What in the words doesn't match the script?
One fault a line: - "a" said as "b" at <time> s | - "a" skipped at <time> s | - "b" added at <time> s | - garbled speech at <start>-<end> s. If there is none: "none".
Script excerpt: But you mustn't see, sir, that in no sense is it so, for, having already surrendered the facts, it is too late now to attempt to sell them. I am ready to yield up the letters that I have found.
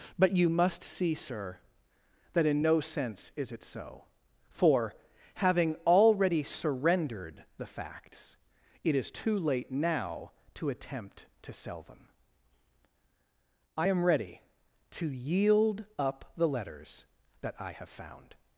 - "mustn't" said as "must" at 0.5 s